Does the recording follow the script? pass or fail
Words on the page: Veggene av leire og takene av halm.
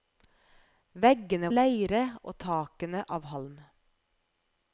pass